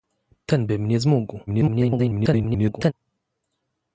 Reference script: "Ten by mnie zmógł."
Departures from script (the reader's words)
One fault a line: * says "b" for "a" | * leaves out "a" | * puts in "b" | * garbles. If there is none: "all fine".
* garbles